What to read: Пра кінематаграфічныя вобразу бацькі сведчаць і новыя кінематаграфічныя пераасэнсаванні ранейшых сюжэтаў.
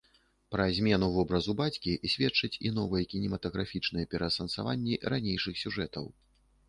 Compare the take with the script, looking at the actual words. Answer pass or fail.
fail